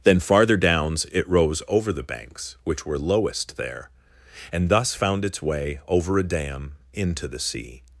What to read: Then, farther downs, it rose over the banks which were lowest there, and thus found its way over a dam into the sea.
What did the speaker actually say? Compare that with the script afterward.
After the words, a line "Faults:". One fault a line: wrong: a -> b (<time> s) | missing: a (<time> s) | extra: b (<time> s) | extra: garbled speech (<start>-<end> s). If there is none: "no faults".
Then, farther downs, it rose over the banks which were lowest there, and thus found its way over a dam into the sea.
Faults:
no faults